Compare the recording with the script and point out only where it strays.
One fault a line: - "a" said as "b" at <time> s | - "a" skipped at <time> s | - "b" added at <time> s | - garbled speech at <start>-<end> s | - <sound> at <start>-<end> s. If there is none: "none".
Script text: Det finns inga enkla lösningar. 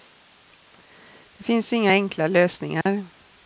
- dropout at 2.8-2.9 s